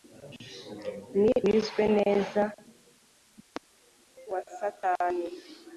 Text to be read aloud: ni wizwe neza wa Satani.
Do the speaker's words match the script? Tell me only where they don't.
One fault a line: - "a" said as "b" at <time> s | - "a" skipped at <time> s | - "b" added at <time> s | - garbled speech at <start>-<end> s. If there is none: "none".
none